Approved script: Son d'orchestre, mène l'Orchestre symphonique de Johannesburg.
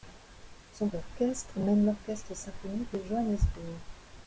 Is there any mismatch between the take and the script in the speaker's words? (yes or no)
no